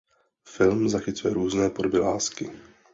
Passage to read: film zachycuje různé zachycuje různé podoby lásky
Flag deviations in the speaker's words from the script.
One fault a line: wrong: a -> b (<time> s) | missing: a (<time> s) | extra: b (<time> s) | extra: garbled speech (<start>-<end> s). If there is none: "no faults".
missing: zachycuje různé (1.7 s)